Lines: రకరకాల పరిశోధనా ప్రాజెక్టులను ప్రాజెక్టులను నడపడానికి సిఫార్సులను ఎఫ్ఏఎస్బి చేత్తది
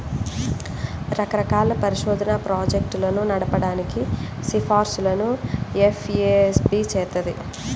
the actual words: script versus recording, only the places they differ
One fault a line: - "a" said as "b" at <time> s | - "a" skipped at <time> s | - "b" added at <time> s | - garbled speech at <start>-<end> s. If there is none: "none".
- "ప్రాజెక్టులను" skipped at 3.2 s